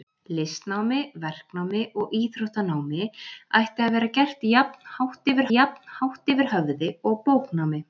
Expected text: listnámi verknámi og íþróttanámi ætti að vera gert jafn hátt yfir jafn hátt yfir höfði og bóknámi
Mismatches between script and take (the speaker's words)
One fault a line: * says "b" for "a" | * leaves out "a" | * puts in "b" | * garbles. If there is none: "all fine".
all fine